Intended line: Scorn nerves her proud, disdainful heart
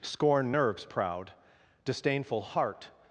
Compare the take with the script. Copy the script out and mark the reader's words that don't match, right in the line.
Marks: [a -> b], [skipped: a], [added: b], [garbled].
Scorn nerves [skipped: her] proud, disdainful heart